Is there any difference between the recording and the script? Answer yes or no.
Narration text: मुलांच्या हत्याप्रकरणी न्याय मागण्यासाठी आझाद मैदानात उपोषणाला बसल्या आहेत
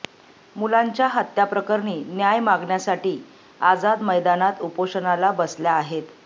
no